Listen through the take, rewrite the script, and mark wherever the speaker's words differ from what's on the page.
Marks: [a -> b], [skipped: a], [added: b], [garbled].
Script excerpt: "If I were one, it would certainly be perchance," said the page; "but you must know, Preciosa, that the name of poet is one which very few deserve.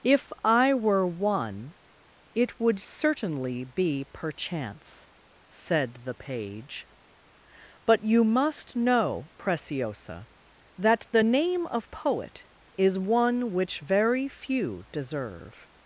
"If I were one, it would certainly be perchance," said the page; "but you must know, Preciosa, that the name of poet is one which very few deserve.